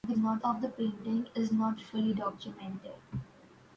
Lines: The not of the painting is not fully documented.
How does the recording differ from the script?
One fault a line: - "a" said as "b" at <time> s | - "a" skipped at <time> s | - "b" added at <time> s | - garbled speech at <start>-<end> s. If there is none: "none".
none